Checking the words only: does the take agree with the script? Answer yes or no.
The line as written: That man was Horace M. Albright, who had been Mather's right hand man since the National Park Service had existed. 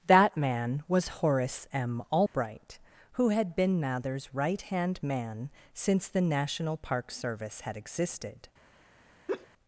yes